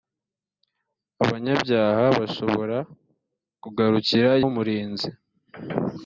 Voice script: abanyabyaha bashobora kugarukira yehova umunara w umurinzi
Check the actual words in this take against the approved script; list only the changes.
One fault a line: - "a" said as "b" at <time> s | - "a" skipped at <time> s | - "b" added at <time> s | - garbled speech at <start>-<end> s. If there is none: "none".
- "yehova umunara" skipped at 4.3 s